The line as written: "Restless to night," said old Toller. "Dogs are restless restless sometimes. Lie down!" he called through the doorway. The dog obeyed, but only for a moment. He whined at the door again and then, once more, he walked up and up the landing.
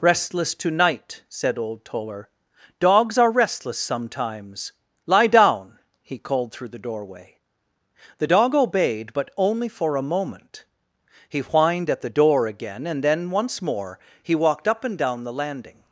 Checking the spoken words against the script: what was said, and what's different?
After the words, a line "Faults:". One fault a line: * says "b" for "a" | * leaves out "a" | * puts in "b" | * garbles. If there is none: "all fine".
"Restless to night," said old Toller. "Dogs are restless sometimes. Lie down!" he called through the doorway. The dog obeyed, but only for a moment. He whined at the door again and then, once more, he walked up and down the landing.
Faults:
* leaves out "restless"
* says "down" for "up"